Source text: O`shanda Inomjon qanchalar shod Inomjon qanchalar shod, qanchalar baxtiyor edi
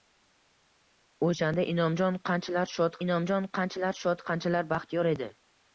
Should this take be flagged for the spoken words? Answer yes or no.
no